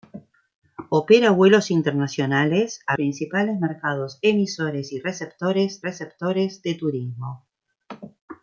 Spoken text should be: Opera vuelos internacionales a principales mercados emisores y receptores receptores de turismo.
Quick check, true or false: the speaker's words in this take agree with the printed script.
true